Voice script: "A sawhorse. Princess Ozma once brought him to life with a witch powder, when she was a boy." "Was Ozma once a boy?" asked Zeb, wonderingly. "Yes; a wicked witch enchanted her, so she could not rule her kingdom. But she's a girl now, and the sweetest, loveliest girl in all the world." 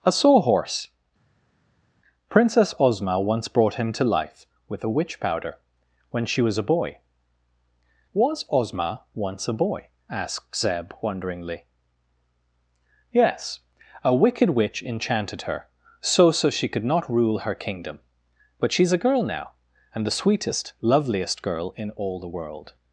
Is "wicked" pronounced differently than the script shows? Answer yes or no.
no